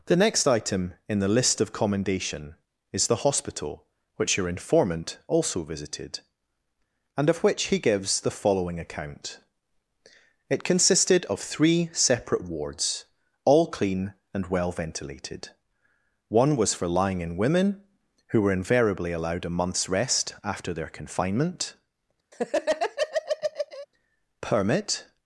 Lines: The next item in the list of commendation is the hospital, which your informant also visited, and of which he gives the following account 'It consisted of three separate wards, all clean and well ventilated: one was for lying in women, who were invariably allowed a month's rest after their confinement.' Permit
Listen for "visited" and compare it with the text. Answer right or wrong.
right